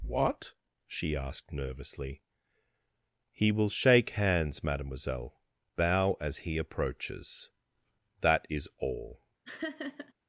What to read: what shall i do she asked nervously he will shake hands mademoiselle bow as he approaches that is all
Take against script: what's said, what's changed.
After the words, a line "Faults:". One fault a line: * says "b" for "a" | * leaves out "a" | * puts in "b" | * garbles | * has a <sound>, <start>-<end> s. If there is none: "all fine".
what she asked nervously he will shake hands mademoiselle bow as he approaches that is all
Faults:
* leaves out "shall i do"
* has a laugh, 9.4-10.1 s